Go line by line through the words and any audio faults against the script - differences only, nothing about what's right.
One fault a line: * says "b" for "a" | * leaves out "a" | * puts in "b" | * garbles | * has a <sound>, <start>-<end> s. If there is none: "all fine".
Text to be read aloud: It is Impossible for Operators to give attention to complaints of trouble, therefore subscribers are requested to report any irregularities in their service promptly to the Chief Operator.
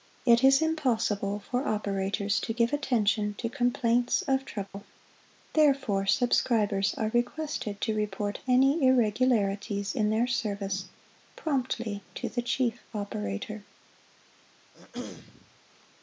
* has a dropout, 4.7-4.7 s
* has a throat clearing, 14.7-15.6 s